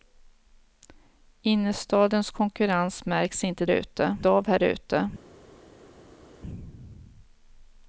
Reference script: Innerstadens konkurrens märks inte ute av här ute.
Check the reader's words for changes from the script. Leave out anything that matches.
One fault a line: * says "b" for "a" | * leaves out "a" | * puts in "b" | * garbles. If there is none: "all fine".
all fine